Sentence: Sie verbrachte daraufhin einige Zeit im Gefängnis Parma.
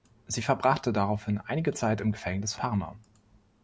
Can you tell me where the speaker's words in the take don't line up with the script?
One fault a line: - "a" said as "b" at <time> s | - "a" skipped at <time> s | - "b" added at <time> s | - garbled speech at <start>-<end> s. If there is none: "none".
none